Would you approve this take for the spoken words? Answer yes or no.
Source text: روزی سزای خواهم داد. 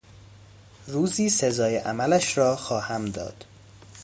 no